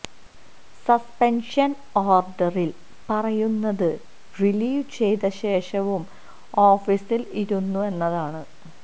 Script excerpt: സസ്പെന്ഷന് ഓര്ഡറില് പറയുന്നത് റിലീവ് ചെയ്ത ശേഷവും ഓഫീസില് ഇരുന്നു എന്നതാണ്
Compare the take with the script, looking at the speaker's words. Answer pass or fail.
pass